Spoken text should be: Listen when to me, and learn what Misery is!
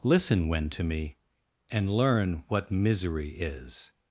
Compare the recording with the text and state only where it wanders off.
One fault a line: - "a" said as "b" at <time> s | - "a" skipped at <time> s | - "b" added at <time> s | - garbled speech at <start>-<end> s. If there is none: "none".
none